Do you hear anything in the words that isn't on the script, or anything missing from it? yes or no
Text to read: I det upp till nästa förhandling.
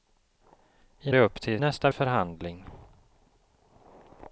no